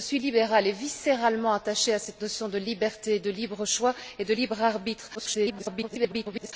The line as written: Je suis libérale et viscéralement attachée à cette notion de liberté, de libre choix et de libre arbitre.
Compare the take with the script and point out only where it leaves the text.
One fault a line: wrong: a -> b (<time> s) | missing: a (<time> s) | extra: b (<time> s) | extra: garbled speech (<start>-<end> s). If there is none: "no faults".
extra: garbled speech (5.1-6.5 s)